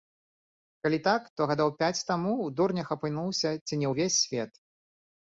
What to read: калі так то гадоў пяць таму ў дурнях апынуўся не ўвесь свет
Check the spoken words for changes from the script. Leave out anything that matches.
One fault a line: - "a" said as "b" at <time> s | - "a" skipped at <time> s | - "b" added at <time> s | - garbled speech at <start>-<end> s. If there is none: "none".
- "ці" added at 3.7 s